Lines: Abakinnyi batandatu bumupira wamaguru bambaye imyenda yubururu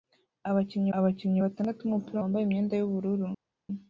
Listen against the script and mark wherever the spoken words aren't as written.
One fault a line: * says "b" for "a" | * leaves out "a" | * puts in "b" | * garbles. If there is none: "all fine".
* puts in "abakinnyi"
* leaves out "wamaguru"